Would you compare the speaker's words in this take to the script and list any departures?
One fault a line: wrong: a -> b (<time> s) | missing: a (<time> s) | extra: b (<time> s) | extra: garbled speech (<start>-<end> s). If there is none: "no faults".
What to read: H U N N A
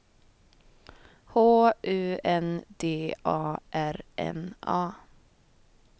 extra: D A R (2.8 s)